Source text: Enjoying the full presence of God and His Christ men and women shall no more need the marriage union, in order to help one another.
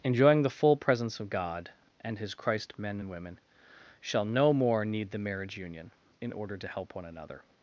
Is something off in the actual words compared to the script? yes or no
no